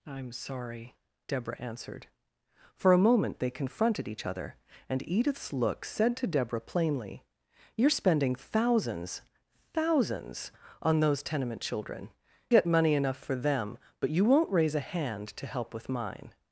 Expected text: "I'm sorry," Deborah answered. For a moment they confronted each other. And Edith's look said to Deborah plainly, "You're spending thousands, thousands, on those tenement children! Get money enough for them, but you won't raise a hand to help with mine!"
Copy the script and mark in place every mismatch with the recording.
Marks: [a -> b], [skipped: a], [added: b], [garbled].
"I'm sorry," Deborah answered. For a moment they confronted each other. And Edith's look said to Deborah plainly, "You're spending thousands, thousands, on those tenement children! Get money enough for them, but you won't raise a hand to help with mine!"